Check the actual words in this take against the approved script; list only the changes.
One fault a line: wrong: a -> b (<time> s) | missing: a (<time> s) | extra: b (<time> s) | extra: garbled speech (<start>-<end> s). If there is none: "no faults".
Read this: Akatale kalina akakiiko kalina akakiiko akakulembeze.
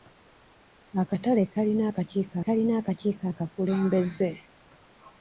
no faults